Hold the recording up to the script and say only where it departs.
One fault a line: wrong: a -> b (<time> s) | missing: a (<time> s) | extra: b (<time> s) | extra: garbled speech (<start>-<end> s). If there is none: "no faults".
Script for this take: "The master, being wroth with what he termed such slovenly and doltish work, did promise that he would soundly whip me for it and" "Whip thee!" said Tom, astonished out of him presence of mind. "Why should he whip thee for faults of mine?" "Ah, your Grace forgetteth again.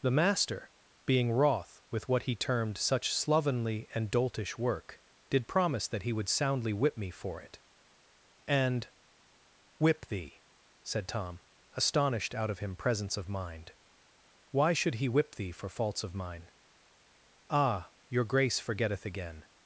no faults